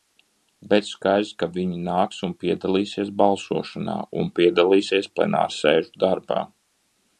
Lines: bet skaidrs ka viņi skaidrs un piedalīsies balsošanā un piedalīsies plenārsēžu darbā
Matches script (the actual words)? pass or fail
fail